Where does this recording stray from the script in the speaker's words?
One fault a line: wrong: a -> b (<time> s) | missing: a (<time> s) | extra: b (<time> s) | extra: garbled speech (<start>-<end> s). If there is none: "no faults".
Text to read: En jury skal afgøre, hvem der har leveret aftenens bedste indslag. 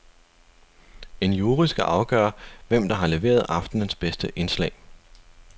no faults